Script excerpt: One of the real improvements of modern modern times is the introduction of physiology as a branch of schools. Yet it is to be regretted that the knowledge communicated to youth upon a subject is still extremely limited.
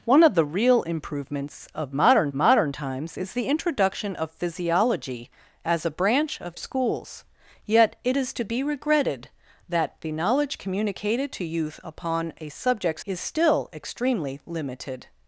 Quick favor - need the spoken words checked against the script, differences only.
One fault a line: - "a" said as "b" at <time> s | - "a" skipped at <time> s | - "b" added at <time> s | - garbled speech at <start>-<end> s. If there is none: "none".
none